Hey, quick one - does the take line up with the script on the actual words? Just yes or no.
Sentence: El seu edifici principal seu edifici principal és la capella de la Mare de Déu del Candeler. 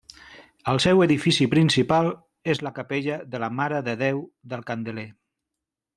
no